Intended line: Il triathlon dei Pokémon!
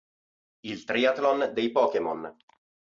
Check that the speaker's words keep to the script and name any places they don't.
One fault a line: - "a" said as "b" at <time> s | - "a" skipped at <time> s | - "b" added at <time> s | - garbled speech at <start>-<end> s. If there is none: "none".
none